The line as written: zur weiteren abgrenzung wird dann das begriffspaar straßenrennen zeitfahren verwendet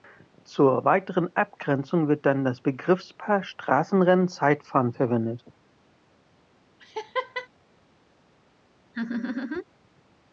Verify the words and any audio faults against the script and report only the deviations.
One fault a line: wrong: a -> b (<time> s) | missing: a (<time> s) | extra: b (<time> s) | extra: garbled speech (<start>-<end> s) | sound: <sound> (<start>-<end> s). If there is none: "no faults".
sound: laugh (6.8-7.5 s)
sound: laugh (8.9-9.6 s)